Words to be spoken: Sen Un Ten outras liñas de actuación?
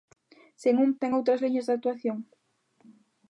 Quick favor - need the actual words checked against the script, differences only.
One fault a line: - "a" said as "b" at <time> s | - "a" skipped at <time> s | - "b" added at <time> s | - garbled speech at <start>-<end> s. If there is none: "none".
none